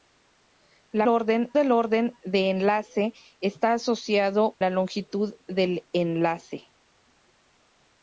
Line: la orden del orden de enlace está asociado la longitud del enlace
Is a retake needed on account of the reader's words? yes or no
no